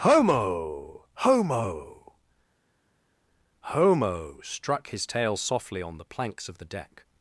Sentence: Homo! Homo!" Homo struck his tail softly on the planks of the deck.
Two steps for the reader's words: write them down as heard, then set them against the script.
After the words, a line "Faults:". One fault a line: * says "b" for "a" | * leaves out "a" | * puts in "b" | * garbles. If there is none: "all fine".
Homo! Homo!" Homo struck his tail softly on the planks of the deck.
Faults:
all fine